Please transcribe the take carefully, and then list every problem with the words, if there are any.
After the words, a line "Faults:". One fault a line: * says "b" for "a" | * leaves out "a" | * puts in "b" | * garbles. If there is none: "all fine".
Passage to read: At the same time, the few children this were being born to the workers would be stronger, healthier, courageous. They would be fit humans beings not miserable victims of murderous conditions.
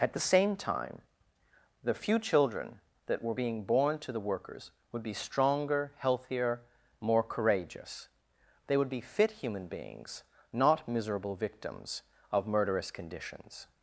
At the same time, the few children that were being born to the workers would be stronger, healthier, more courageous. They would be fit human beings not miserable victims of murderous conditions.
Faults:
* says "that" for "this"
* puts in "more"
* says "human" for "humans"